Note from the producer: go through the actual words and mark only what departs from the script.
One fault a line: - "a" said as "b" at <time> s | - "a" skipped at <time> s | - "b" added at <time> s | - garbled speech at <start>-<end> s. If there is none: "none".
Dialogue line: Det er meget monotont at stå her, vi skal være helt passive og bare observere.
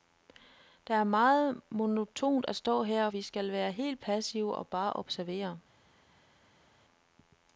none